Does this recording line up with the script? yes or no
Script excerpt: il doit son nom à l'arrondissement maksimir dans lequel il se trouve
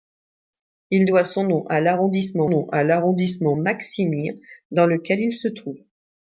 no